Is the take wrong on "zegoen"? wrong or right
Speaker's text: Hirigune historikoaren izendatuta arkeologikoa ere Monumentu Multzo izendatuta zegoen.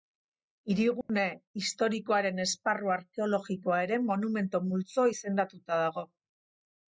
wrong